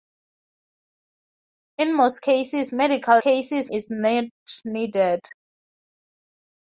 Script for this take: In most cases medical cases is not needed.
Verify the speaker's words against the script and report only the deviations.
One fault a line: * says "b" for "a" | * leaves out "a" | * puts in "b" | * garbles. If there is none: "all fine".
all fine